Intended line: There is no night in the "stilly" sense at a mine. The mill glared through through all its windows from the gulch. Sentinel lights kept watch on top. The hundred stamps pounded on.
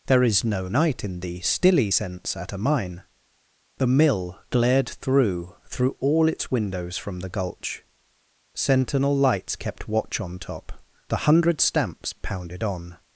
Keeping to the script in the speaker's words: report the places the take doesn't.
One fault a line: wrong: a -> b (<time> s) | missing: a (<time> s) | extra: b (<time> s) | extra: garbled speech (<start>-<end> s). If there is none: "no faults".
no faults